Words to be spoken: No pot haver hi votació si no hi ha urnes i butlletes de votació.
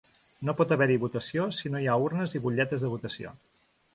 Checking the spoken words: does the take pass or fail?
pass